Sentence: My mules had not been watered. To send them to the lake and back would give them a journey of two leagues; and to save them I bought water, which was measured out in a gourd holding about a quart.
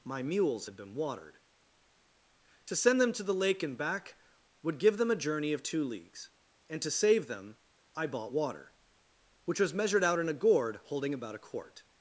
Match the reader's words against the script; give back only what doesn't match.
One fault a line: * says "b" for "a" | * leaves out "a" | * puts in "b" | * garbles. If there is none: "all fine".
* leaves out "not"